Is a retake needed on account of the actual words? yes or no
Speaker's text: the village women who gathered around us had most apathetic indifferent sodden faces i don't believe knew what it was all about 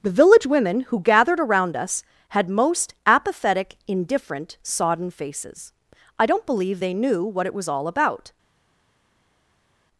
yes